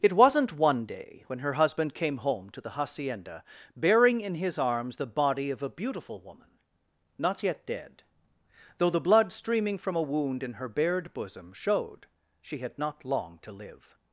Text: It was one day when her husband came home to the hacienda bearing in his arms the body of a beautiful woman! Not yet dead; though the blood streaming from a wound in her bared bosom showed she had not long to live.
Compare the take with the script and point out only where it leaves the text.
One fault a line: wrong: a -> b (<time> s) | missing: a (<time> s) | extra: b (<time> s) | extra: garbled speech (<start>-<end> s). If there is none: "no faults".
wrong: was -> wasn't (0.1 s)